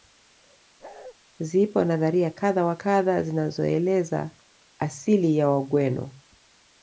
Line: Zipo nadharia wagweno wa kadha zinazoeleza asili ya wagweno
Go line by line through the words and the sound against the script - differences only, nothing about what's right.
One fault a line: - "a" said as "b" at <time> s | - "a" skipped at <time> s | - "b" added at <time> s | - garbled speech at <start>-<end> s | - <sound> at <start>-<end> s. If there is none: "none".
- bark at 0.8-1.1 s
- "wagweno" said as "kadha" at 2.3 s